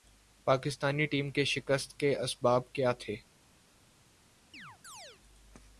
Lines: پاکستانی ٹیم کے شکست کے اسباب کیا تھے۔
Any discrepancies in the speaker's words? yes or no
no